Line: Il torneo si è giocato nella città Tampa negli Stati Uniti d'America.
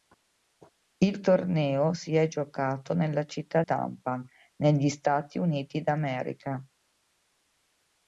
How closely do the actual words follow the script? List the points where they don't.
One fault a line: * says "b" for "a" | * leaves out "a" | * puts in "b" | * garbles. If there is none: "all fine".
all fine